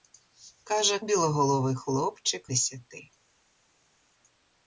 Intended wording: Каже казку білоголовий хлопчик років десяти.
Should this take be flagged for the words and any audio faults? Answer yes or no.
yes